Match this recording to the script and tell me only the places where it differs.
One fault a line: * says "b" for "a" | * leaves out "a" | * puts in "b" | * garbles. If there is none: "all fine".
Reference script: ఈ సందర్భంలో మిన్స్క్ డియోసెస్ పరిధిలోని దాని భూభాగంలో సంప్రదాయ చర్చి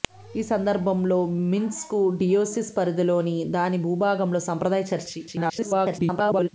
* garbles